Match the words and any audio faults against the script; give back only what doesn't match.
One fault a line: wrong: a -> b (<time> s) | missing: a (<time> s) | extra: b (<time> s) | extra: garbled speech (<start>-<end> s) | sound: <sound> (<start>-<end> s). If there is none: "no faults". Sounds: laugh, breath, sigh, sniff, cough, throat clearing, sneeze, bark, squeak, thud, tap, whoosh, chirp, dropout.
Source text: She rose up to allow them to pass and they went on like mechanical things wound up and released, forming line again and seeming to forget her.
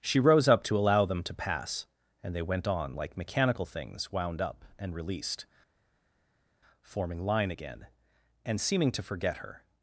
no faults